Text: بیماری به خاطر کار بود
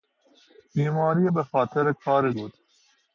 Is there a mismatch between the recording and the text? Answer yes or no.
no